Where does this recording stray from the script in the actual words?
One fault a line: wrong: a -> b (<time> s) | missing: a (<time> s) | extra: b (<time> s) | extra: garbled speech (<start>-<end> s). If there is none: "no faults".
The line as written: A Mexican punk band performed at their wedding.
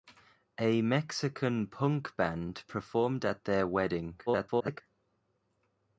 extra: garbled speech (4.3-4.8 s)